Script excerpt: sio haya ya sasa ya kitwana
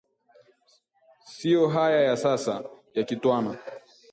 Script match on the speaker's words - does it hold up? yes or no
yes